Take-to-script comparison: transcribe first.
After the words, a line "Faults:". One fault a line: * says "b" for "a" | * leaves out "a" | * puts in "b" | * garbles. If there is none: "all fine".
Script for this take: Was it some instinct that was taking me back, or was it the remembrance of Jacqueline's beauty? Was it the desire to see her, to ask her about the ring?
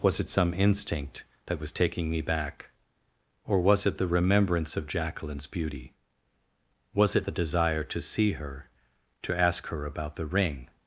Was it some instinct that was taking me back, or was it the remembrance of Jacqueline's beauty? Was it the desire to see her, to ask her about the ring?
Faults:
all fine